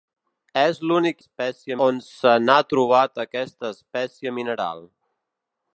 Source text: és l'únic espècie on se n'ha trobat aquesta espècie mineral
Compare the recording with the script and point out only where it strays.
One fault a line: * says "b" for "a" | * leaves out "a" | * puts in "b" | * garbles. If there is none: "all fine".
all fine